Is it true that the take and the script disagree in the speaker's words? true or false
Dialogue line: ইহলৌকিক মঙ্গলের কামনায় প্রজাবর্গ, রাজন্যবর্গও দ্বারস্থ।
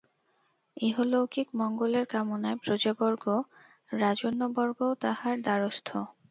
true